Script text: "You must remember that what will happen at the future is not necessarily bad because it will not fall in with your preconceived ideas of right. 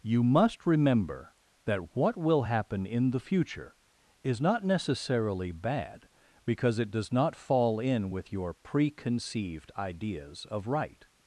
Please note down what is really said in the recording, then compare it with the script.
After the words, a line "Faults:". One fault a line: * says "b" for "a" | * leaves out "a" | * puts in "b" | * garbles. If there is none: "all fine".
"You must remember that what will happen in the future is not necessarily bad because it does not fall in with your preconceived ideas of right.
Faults:
* says "in" for "at"
* says "does" for "will"